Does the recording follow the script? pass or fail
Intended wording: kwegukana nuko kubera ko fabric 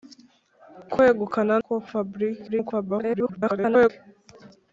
fail